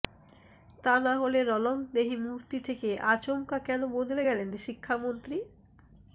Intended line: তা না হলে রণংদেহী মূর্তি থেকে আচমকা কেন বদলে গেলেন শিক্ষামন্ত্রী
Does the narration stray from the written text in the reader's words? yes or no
no